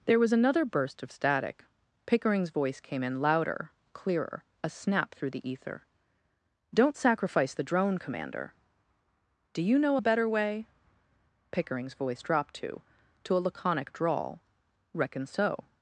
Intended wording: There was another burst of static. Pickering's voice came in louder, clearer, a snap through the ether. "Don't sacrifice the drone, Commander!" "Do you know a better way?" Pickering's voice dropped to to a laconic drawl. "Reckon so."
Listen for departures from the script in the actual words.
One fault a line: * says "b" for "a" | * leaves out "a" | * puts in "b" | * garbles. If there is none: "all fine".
all fine